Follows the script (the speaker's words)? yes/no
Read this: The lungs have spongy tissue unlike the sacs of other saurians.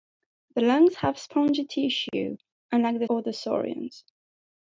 no